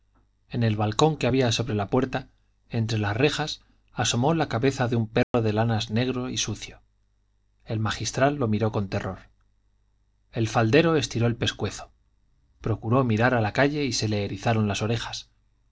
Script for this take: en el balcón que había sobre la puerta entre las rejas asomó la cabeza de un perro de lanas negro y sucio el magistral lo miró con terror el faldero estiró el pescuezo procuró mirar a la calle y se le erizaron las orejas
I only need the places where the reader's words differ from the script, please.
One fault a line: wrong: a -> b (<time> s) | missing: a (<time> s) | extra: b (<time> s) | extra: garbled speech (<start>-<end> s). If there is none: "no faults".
no faults